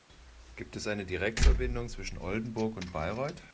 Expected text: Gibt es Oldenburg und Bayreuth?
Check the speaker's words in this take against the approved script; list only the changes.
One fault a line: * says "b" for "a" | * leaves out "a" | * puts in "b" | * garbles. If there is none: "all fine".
* puts in "eine Direktverbindung zwischen"